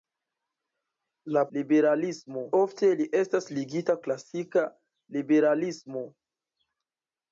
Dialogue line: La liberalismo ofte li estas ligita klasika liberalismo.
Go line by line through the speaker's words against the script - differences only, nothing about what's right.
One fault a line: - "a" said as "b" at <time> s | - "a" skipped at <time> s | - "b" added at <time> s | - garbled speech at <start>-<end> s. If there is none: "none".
none